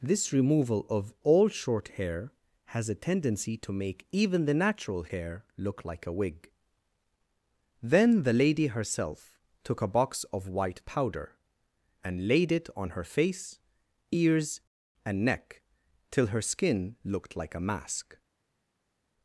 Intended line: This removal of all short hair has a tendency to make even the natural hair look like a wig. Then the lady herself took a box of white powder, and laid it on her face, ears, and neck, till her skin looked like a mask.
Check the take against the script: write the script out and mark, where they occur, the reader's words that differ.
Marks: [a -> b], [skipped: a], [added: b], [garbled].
This removal of all short hair has a tendency to make even the natural hair look like a wig. Then the lady herself took a box of white powder, and laid it on her face, ears, and neck, till her skin looked like a mask.